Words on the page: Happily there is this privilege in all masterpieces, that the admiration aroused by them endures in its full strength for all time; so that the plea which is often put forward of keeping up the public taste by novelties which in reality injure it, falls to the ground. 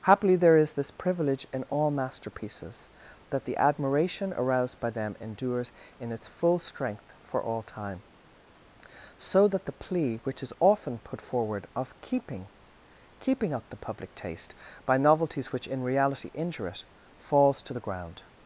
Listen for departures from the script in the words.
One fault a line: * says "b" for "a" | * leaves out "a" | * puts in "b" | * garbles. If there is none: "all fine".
* puts in "keeping"